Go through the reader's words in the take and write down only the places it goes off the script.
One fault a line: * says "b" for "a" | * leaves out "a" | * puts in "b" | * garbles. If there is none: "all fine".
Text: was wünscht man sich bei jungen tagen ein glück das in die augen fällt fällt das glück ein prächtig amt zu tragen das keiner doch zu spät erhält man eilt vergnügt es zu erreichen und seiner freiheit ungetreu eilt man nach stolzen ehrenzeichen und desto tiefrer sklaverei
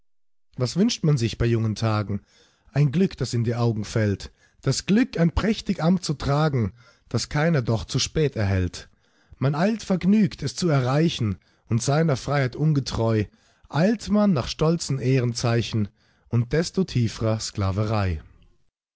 * leaves out "fällt"